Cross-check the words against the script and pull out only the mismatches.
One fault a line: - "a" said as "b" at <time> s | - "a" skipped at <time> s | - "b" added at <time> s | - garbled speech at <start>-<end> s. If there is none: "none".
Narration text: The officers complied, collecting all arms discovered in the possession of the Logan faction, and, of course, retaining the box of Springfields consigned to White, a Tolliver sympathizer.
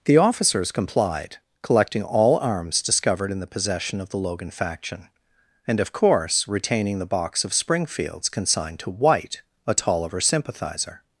none